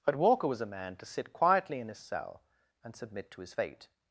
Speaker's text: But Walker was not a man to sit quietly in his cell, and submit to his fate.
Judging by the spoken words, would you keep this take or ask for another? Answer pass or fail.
fail